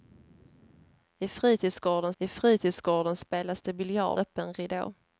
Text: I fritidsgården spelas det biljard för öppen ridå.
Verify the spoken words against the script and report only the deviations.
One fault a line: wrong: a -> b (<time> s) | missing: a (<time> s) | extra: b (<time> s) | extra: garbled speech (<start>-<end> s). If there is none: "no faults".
extra: I fritidsgården (2.2 s)
missing: för (4.2 s)